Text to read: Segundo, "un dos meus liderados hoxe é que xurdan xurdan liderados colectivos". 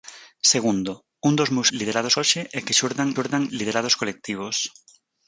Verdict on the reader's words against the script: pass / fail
pass